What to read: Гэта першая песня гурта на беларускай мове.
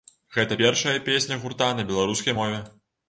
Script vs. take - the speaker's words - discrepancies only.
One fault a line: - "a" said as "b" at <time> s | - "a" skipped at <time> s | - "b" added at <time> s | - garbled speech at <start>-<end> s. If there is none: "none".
none